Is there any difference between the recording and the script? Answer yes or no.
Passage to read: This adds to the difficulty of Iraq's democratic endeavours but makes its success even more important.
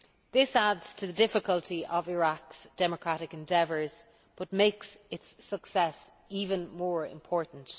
no